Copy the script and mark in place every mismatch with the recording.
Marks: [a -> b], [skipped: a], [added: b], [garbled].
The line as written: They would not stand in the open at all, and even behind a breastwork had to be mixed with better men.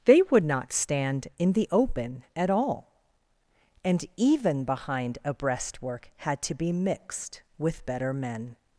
They would not stand in the open at all, and even behind a breastwork had to be mixed with better men.